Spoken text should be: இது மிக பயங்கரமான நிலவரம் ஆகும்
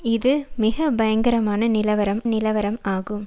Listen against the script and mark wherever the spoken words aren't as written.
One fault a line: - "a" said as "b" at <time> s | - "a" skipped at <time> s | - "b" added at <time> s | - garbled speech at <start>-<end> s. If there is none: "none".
- "நிலவரம்" added at 2.2 s